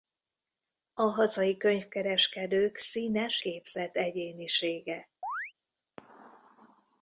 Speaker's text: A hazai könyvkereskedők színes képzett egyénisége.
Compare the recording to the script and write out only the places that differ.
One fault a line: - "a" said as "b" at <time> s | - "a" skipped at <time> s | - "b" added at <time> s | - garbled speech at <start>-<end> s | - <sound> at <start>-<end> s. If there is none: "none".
- chirp at 5.2-5.5 s